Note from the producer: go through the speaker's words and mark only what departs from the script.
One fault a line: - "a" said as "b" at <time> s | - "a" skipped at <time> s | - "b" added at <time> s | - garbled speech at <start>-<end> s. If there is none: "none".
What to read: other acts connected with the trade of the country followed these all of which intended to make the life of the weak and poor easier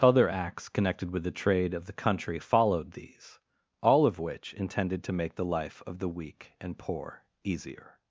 none